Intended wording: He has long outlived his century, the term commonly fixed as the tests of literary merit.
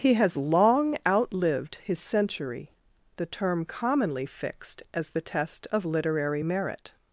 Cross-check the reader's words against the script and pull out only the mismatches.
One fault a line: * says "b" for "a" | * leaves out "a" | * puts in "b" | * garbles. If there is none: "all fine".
* says "test" for "tests"